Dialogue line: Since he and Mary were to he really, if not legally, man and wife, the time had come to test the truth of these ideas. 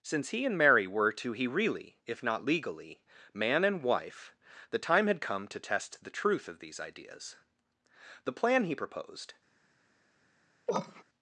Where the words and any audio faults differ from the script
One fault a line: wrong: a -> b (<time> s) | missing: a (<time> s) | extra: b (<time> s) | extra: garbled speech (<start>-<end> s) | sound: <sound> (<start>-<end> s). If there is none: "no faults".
extra: The plan he proposed (8.2 s)
sound: cough (10.7-11.0 s)